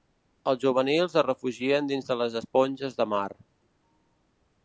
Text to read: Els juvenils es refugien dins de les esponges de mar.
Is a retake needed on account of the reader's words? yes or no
no